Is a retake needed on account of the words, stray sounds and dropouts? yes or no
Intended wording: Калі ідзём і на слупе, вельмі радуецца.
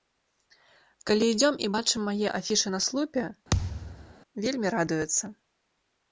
yes